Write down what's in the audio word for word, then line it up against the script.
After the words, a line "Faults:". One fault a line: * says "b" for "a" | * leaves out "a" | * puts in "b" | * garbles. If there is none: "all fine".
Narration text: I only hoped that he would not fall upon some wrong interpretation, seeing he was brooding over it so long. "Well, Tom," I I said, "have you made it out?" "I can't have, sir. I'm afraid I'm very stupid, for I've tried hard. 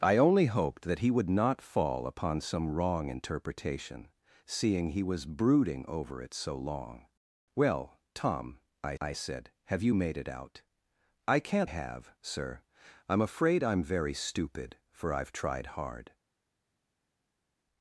I only hoped that he would not fall upon some wrong interpretation, seeing he was brooding over it so long. "Well, Tom," I I said, "have you made it out?" "I can't have, sir. I'm afraid I'm very stupid, for I've tried hard.
Faults:
all fine